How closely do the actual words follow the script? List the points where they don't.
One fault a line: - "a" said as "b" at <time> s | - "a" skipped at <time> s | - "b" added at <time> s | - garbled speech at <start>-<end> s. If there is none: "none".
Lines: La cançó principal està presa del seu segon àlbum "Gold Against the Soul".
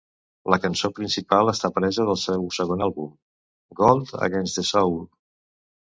none